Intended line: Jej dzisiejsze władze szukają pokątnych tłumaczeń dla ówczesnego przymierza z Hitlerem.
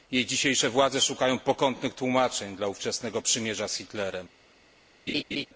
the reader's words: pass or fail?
pass